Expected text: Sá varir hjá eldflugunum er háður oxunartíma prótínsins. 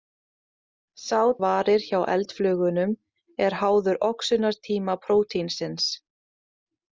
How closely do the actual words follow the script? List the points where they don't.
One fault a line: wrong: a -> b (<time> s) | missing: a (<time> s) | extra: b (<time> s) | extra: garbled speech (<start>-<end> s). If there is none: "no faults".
no faults